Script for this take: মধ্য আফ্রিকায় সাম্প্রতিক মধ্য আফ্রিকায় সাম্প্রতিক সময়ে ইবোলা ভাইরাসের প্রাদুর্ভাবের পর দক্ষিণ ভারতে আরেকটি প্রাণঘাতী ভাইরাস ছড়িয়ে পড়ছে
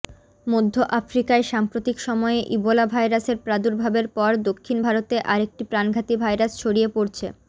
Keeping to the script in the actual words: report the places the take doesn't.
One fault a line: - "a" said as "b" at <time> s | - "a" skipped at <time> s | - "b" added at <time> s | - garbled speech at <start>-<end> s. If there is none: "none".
- "মধ্য আফ্রিকায় সাম্প্রতিক" skipped at 2.0 s